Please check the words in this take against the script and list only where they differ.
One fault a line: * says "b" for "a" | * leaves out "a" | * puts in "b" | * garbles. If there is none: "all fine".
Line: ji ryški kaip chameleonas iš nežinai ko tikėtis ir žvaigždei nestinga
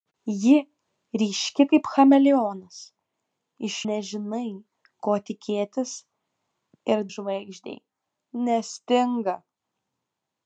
all fine